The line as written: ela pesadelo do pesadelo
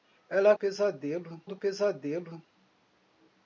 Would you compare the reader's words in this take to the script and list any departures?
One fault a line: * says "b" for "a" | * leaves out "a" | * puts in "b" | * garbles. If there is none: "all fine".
all fine